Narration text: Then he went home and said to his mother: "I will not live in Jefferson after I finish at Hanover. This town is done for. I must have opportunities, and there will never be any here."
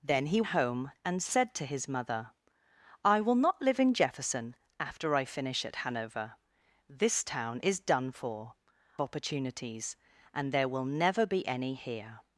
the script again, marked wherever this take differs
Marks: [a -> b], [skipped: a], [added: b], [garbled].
Then he [skipped: went] home and said to his mother: "I will not live in Jefferson after I finish at Hanover. This town is done for. [skipped: I must have] opportunities, and there will never be any here."